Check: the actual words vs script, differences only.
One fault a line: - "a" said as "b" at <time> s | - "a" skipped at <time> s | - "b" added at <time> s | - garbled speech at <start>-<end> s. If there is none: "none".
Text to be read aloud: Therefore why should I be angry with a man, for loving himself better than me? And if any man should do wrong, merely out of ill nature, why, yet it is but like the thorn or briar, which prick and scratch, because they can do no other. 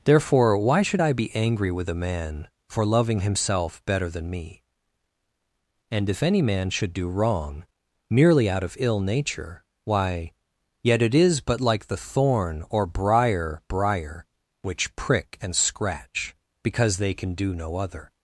- "briar" added at 13.7 s